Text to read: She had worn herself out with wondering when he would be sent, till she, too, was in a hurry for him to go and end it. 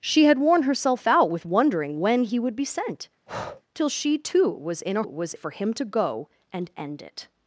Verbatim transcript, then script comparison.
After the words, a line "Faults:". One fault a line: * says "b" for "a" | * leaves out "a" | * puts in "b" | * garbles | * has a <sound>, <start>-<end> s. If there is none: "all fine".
She had worn herself out with wondering when he would be sent, till she, too, was in a was for him to go and end it.
Faults:
* has a breath, 3.3-3.6 s
* says "was" for "hurry"